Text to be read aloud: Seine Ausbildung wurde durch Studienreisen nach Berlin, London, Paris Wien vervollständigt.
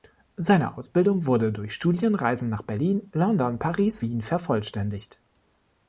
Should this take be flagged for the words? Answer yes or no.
no